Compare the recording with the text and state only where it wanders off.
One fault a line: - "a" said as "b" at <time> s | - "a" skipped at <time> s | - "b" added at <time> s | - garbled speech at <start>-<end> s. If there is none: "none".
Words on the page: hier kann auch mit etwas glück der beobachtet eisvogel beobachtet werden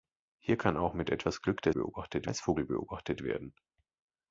none